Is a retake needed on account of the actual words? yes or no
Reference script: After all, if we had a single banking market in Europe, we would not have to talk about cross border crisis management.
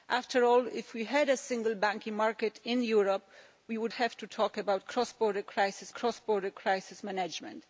yes